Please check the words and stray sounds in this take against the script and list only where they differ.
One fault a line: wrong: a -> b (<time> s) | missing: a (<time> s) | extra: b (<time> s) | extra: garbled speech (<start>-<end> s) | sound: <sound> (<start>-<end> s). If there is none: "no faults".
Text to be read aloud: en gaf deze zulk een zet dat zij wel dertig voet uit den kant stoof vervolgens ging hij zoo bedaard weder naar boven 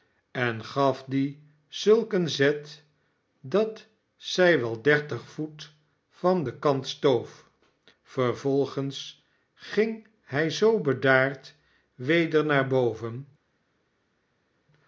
wrong: deze -> die (1.1 s)
wrong: uit -> van (6.1 s)